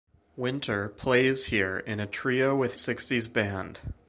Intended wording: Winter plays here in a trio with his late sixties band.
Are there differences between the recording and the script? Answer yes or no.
yes